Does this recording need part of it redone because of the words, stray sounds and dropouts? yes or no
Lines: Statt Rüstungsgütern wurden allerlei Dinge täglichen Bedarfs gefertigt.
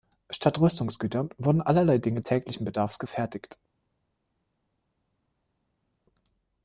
no